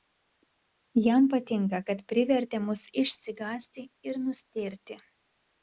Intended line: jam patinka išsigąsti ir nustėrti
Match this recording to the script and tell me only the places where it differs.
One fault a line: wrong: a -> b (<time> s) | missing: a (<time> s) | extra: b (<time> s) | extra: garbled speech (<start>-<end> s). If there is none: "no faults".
extra: kad privertė mus (1.9 s)